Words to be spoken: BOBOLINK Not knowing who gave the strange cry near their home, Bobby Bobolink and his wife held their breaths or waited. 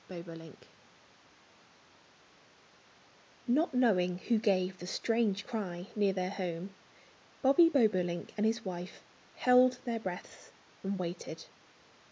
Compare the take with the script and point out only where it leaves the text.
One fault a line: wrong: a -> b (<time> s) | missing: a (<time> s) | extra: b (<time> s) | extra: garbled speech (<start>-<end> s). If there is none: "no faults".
wrong: or -> and (10.8 s)